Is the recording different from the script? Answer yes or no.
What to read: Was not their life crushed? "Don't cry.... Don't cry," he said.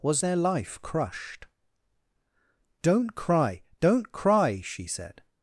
yes